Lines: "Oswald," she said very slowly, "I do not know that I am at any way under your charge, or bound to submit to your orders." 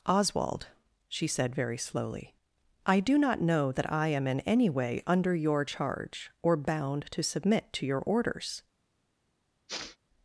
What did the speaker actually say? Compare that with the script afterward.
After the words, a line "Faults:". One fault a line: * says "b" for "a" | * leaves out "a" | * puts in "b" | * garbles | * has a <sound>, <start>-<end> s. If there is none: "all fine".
"Oswald," she said very slowly, "I do not know that I am in any way under your charge, or bound to submit to your orders."
Faults:
* says "in" for "at"
* has a sniff, 9.7-10.0 s